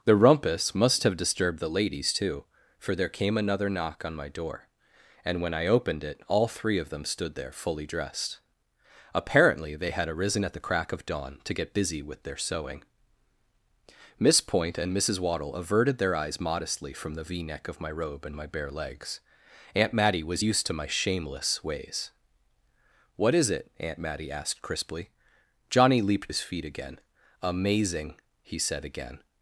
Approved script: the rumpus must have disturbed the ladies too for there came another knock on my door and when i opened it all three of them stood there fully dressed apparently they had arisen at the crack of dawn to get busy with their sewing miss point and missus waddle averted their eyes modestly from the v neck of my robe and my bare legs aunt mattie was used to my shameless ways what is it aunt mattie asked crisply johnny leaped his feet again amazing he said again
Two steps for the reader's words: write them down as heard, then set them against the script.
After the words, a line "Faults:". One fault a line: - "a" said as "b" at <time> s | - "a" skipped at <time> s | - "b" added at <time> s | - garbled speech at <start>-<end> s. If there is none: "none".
the rumpus must have disturbed the ladies too for there came another knock on my door and when i opened it all three of them stood there fully dressed apparently they had arisen at the crack of dawn to get busy with their sewing miss point and missus waddle averted their eyes modestly from the v neck of my robe and my bare legs aunt mattie was used to my shameless ways what is it aunt mattie asked crisply johnny leaped his feet again amazing he said again
Faults:
none